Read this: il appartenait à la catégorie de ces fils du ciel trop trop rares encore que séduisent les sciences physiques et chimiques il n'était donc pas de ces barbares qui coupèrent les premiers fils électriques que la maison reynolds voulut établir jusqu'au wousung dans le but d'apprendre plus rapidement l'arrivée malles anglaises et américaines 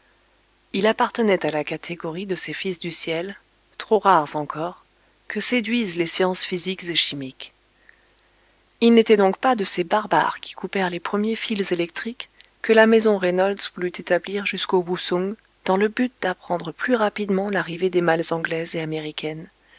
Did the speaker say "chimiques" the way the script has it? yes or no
yes